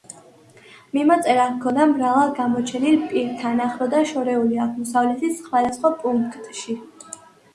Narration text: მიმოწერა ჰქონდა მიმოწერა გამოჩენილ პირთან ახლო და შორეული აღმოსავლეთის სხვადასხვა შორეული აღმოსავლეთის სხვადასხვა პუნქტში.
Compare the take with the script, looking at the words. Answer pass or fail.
fail